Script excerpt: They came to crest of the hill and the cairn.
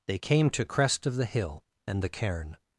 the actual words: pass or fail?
pass